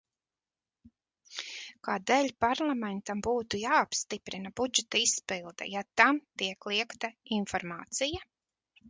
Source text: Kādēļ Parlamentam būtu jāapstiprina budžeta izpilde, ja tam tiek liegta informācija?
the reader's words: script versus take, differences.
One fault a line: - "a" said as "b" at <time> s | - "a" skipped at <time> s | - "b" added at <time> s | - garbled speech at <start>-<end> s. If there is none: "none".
none